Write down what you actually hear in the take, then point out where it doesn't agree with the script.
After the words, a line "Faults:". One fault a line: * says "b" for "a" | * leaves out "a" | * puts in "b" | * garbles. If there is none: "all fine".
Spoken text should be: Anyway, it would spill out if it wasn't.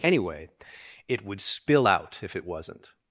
Anyway, it would spill out if it wasn't.
Faults:
all fine